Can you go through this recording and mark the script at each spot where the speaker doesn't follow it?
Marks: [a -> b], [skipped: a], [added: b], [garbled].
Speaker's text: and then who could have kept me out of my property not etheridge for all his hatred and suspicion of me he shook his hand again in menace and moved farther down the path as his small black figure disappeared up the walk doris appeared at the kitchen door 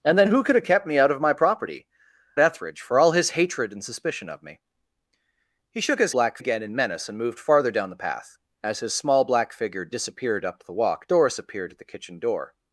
and then who could have kept me out of my property [skipped: not] etheridge for all his hatred and suspicion of me he shook his [hand -> black] again in menace and moved farther down the path as his small black figure disappeared up the walk doris appeared at the kitchen door